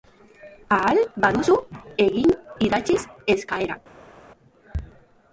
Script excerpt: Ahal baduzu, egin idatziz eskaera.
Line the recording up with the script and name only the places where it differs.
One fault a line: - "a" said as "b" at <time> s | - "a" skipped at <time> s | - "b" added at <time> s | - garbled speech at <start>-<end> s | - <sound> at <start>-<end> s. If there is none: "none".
none